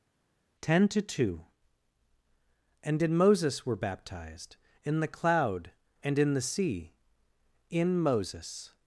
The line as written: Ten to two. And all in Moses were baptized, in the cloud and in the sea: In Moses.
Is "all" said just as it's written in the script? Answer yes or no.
no